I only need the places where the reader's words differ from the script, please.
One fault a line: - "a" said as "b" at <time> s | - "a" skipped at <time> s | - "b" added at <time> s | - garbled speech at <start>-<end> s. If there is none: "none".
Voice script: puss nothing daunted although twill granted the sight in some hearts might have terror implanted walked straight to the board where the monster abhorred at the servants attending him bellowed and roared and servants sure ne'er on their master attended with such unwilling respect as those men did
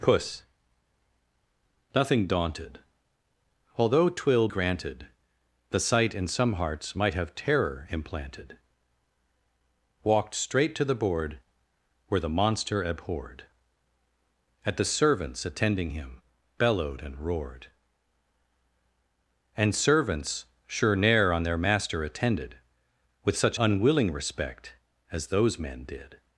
none